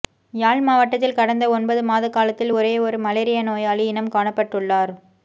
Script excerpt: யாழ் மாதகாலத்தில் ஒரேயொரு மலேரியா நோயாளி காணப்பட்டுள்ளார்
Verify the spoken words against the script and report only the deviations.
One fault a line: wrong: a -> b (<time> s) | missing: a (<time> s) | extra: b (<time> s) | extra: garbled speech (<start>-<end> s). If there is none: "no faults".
extra: மாவட்டத்தில் கடந்த ஒன்பது (0.6 s)
extra: இனம் (3.9 s)